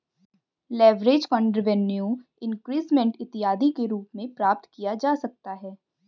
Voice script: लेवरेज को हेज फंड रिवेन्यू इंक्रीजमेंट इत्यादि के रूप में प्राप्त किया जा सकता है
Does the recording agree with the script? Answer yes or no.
no